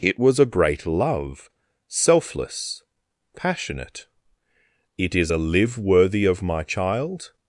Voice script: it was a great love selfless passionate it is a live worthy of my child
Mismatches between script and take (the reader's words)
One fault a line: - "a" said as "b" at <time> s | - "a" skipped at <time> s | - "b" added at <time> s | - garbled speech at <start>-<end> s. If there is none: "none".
none